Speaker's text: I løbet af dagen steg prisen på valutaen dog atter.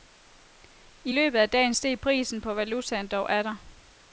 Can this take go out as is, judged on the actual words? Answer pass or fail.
pass